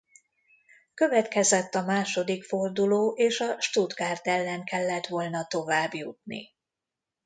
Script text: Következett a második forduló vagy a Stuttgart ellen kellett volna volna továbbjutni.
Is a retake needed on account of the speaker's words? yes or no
yes